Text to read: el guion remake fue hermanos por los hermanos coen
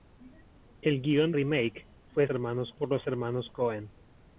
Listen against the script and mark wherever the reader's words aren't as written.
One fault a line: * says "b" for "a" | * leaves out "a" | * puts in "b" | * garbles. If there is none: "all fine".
all fine